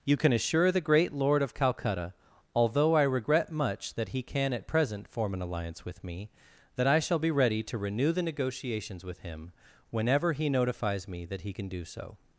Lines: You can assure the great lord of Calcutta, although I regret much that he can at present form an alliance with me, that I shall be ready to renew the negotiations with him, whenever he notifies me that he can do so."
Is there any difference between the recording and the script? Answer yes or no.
no